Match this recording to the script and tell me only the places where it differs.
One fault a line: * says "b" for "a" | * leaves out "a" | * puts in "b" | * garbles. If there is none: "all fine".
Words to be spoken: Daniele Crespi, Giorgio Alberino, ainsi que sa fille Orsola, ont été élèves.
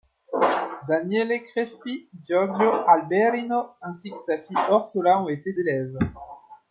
all fine